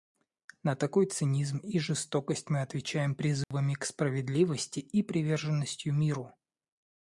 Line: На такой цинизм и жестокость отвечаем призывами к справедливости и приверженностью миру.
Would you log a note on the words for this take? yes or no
yes